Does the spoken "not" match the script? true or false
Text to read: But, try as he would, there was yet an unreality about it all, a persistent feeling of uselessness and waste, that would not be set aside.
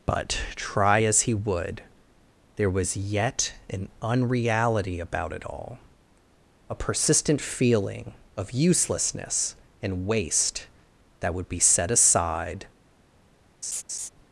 false